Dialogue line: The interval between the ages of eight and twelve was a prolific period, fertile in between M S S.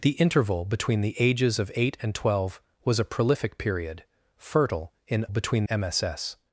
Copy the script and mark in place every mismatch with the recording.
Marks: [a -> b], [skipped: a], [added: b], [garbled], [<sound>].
The interval between the ages of eight and twelve was a prolific period, fertile in between M S S.